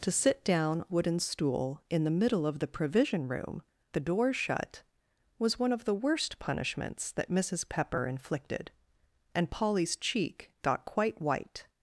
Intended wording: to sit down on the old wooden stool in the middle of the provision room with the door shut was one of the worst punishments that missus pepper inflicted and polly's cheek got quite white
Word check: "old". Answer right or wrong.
wrong